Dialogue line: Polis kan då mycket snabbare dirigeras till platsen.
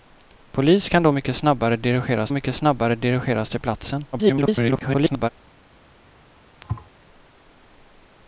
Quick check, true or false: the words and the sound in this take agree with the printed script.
false